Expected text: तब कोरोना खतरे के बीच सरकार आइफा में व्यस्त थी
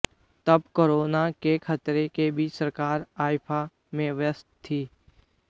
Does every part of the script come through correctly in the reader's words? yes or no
no